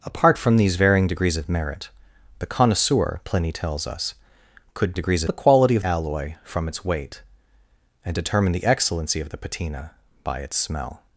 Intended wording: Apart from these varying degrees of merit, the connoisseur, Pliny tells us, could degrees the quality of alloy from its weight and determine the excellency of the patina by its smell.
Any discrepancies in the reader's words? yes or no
no